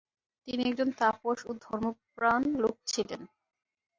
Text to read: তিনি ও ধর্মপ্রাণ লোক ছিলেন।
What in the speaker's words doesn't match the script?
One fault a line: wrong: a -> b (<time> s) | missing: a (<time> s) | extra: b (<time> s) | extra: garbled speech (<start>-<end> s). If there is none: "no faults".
extra: একজন তাপস (0.7 s)